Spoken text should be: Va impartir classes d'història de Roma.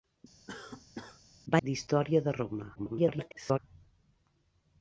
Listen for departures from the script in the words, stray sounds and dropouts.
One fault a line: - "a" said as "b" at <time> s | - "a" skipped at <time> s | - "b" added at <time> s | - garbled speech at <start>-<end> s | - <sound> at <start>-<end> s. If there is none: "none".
- cough at 0.5-1.2 s
- "impartir classes" skipped at 1.6 s
- garbled speech at 2.8-3.6 s